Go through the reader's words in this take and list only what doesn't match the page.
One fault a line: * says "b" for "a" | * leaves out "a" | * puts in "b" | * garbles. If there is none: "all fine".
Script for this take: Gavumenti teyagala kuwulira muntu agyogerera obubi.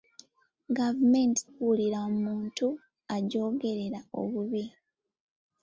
* leaves out "teyagala"